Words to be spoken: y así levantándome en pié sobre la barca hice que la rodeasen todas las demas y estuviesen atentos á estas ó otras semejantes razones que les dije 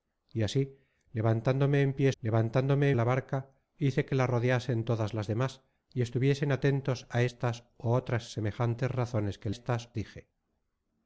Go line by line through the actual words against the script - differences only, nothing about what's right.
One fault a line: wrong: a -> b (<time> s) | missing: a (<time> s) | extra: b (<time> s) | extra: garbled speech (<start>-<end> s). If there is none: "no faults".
wrong: sobre -> levantándome (2.2 s)
wrong: les -> estas (9.5 s)